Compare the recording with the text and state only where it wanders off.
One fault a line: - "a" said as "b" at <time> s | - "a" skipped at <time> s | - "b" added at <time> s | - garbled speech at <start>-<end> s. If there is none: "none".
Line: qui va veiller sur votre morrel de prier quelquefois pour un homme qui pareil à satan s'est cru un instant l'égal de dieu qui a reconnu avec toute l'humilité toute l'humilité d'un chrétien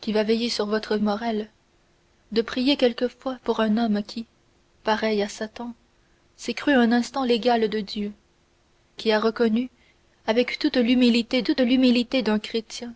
none